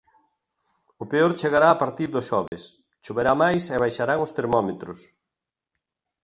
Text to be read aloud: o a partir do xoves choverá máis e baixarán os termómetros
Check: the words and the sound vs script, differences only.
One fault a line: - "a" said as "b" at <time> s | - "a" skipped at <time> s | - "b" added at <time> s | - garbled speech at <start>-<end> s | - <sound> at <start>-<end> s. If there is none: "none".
- "peor chegará" added at 1.1 s
- dropout at 2.5-2.5 s